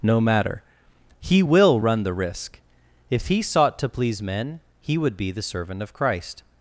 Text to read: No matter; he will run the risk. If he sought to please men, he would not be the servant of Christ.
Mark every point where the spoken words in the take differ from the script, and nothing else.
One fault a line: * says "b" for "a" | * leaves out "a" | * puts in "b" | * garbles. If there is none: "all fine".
* leaves out "not"